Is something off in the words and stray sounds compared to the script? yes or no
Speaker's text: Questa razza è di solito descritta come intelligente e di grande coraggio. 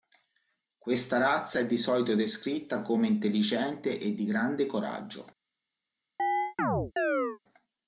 yes